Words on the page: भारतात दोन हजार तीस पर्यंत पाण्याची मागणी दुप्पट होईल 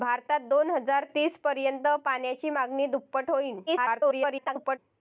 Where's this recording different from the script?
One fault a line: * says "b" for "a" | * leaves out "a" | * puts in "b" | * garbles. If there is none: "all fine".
* garbles